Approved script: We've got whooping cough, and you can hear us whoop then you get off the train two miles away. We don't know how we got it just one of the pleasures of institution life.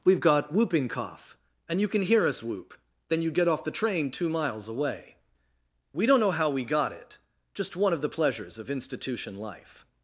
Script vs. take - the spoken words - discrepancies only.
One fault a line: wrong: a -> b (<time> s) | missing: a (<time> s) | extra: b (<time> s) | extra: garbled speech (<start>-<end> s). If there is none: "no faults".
no faults